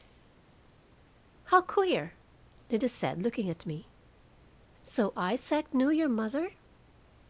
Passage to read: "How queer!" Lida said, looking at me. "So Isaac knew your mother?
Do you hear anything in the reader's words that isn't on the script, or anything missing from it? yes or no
no